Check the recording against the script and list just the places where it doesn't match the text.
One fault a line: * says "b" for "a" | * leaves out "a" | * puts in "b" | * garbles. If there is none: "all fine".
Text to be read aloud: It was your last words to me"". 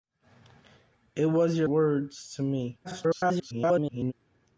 * leaves out "last"
* garbles